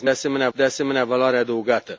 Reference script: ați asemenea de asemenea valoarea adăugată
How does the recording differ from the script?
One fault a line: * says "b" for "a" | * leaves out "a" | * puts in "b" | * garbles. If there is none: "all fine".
all fine